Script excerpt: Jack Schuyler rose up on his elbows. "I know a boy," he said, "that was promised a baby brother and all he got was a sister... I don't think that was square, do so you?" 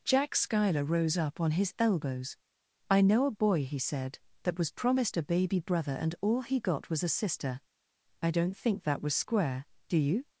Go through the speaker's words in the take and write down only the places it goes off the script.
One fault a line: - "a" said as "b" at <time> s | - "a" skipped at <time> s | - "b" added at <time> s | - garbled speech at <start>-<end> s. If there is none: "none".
- "so" skipped at 10.0 s